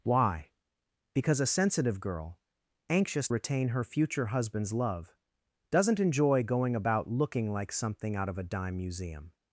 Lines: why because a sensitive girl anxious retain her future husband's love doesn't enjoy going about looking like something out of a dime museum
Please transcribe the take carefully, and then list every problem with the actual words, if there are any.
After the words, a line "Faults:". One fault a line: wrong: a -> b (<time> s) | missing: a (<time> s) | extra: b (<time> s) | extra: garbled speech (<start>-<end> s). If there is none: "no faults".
why because a sensitive girl anxious retain her future husband's love doesn't enjoy going about looking like something out of a dime museum
Faults:
no faults